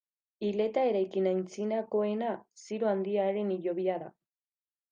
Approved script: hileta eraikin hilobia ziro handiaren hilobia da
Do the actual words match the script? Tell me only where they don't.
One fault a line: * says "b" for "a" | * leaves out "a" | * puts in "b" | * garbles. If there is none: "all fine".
* says "antzinakoena" for "hilobia"